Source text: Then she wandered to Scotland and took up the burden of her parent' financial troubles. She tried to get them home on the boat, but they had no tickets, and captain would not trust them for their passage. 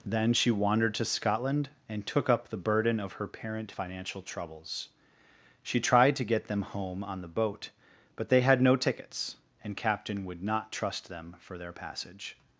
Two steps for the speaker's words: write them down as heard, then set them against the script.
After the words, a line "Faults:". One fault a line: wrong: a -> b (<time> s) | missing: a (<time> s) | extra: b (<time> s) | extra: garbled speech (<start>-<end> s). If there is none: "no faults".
Then she wandered to Scotland and took up the burden of her parent' financial troubles. She tried to get them home on the boat, but they had no tickets, and captain would not trust them for their passage.
Faults:
no faults